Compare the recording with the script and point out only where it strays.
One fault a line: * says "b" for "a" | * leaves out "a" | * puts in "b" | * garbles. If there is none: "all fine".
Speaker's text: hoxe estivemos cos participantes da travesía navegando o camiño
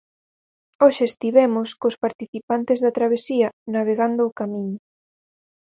all fine